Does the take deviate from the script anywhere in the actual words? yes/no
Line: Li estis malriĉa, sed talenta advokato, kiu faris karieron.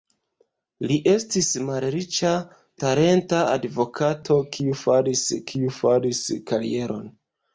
yes